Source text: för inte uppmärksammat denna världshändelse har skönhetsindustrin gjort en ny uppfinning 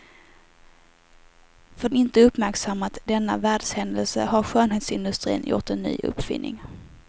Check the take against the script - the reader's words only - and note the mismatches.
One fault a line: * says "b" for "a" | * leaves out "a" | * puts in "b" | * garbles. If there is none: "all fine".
all fine